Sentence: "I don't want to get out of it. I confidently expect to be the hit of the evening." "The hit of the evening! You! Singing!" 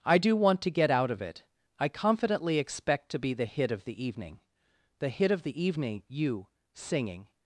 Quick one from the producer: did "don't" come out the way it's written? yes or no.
no